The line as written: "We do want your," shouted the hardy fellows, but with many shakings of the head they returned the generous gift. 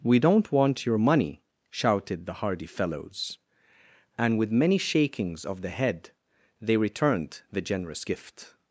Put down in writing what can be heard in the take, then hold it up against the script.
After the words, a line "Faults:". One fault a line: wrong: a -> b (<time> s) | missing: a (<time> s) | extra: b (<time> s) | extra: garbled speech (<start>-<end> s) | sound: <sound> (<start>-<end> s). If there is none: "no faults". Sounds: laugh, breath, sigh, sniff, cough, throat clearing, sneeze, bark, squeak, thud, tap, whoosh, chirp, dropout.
"We don't want your money," shouted the hardy fellows, and with many shakings of the head they returned the generous gift.
Faults:
wrong: do -> don't (0.2 s)
extra: money (1.0 s)
wrong: but -> and (4.2 s)